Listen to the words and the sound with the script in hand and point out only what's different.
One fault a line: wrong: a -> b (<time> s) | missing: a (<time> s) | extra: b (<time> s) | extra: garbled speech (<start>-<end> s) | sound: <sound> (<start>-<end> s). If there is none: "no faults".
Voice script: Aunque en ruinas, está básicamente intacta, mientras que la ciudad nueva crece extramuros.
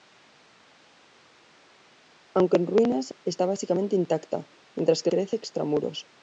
missing: la ciudad nueva (5.1 s)